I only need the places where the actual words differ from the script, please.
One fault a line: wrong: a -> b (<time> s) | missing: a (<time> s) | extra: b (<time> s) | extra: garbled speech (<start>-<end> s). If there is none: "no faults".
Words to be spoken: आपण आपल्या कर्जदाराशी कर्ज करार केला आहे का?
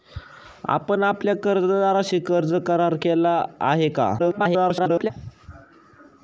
extra: garbled speech (4.2-5.1 s)